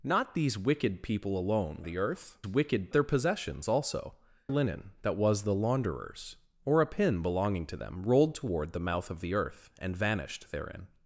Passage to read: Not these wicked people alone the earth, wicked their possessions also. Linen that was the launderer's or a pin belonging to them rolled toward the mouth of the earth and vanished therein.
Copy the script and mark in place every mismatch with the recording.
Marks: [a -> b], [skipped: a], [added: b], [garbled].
Not these wicked people alone the earth, wicked their possessions also. Linen that was the launderer's or a pin belonging to them rolled toward the mouth of the earth and vanished therein.